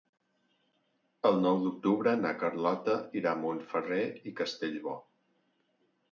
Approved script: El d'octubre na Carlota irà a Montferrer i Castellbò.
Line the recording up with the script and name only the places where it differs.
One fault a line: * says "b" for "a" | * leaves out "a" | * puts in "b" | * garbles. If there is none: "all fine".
* puts in "nou"